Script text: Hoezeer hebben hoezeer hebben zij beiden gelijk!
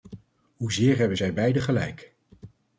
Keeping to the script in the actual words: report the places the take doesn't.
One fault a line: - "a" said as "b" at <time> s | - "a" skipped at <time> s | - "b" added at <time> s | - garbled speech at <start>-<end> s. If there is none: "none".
- "hoezeer hebben" skipped at 1.2 s